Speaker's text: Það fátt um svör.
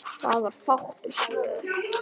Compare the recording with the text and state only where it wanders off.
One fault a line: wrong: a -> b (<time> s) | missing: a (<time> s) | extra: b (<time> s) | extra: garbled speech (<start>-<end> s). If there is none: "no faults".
extra: var (0.4 s)